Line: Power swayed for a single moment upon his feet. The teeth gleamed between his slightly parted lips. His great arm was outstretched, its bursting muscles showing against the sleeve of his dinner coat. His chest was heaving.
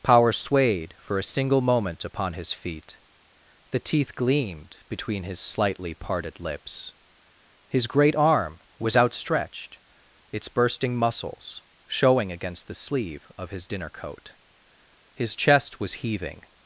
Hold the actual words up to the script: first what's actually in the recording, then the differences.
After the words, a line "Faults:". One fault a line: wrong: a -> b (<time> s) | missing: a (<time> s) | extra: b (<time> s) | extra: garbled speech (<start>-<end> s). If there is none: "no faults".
Power swayed for a single moment upon his feet. The teeth gleamed between his slightly parted lips. His great arm was outstretched, its bursting muscles showing against the sleeve of his dinner coat. His chest was heaving.
Faults:
no faults